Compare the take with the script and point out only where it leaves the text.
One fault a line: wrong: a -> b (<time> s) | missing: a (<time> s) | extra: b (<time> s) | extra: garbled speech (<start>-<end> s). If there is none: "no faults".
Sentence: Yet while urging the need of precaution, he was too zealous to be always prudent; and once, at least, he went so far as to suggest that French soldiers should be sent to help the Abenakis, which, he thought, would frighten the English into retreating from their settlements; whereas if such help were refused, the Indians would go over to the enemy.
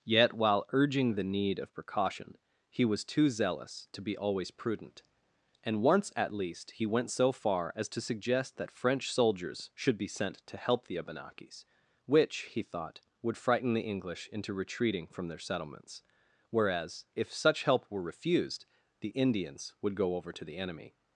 no faults